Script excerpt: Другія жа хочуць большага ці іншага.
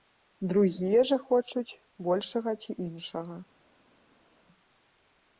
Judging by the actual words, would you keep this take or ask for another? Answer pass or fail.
pass